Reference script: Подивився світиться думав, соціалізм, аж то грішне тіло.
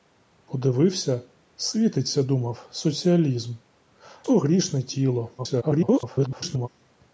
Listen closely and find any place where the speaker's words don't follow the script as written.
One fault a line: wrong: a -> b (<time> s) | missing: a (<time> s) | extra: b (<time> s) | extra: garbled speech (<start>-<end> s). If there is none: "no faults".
missing: аж (3.5 s)
extra: garbled speech (5.4-6.7 s)